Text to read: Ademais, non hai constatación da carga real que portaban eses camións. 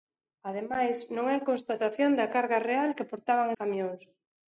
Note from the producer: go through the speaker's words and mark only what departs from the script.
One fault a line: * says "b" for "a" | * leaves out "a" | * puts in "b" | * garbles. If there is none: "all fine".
* leaves out "eses"